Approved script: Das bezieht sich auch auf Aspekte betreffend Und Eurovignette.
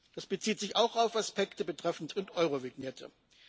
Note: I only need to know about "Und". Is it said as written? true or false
true